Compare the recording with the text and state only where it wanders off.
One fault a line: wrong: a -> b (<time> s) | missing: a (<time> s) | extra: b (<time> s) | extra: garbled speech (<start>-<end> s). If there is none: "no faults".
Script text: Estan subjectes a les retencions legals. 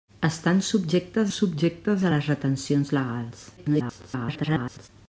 extra: subjectes (1.4 s)
extra: garbled speech (3.6-4.9 s)